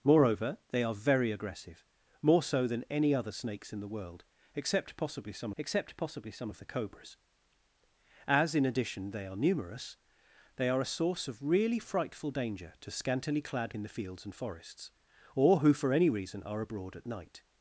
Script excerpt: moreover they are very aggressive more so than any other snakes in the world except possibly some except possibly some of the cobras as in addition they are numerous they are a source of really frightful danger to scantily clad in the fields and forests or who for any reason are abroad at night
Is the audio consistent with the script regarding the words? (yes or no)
yes